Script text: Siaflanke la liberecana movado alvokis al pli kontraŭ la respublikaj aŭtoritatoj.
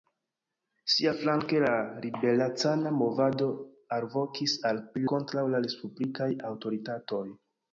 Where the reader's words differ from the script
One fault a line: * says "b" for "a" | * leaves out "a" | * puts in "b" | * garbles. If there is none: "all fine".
all fine